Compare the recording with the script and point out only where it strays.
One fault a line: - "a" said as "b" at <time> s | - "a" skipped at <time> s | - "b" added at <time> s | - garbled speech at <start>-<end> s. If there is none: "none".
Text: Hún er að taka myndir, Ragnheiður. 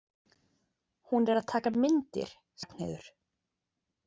none